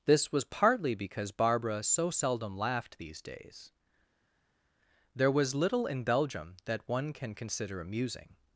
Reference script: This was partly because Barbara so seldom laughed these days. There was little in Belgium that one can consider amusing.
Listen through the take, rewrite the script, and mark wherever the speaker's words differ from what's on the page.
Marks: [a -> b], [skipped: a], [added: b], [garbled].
This was partly because Barbara so seldom laughed these days. There was little in Belgium that one can consider amusing.